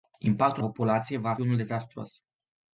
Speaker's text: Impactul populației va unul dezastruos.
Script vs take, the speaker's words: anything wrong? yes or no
no